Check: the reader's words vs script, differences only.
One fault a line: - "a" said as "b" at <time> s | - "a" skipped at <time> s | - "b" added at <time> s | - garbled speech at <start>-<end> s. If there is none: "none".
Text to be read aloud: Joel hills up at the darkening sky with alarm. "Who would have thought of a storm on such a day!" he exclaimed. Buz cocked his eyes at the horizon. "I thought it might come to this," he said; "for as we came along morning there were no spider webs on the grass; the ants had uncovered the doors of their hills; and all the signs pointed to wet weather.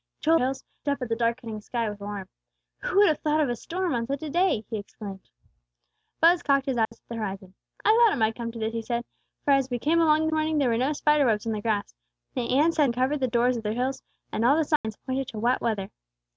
none